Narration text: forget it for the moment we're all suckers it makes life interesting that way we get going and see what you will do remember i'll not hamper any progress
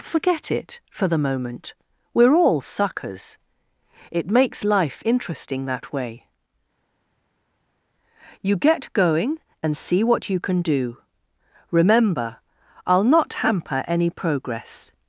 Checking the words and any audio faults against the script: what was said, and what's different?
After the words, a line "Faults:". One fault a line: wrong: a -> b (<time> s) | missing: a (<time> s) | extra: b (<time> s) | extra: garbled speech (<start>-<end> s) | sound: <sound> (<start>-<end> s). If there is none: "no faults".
forget it for the moment we're all suckers it makes life interesting that way you get going and see what you can do remember i'll not hamper any progress
Faults:
wrong: we -> you (8.4 s)
wrong: will -> can (10.4 s)